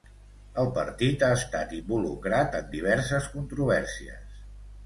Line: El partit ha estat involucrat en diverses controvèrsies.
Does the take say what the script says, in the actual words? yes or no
yes